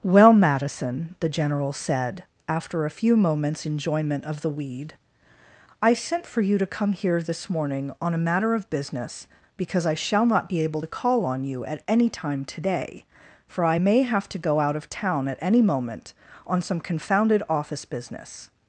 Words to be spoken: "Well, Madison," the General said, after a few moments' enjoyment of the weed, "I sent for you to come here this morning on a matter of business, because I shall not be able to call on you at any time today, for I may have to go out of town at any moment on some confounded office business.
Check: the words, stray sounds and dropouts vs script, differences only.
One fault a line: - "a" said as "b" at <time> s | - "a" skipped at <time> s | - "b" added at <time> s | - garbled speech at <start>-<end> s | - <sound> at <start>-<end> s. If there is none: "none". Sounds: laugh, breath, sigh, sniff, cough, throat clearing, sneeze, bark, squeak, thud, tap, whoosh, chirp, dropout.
none